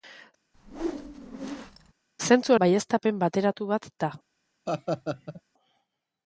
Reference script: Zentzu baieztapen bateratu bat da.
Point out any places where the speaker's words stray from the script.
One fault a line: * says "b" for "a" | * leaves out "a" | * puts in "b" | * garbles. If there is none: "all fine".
all fine